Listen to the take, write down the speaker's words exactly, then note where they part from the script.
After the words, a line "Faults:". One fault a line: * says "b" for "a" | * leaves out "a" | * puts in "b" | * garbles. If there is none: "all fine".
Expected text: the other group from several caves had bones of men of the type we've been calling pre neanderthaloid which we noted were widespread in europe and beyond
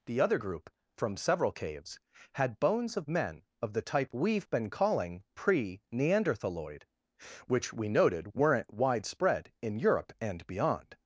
the other group from several caves had bones of men of the type we've been calling pre neanderthaloid which we noted weren't widespread in europe and beyond
Faults:
* says "weren't" for "were"